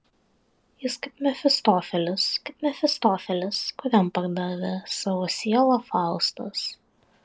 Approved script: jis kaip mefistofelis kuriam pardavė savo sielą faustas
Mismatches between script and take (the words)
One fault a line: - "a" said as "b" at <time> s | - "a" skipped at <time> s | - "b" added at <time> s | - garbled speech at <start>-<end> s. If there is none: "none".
- "kaip mefistofelis" added at 2.5 s